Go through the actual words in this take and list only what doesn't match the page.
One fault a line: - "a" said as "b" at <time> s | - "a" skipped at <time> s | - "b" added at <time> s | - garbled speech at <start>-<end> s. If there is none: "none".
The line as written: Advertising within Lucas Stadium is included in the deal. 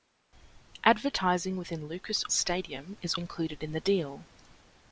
none